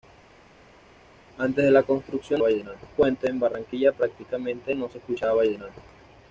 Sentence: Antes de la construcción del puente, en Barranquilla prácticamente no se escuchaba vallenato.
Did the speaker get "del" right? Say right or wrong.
wrong